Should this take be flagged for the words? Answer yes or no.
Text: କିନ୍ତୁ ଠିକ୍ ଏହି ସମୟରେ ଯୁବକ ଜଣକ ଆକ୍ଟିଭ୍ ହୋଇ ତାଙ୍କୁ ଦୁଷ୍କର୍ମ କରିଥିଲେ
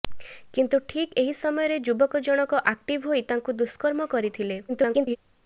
yes